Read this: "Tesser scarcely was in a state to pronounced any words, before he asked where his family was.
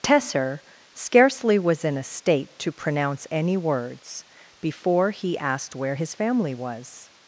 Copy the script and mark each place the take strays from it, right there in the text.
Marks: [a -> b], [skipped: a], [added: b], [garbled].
"Tesser scarcely was in a state to [pronounced -> pronounce] any words, before he asked where his family was.